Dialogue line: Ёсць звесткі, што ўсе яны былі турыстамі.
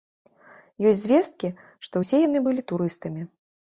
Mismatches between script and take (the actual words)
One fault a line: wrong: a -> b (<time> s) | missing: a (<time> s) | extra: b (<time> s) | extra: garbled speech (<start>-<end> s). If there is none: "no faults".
no faults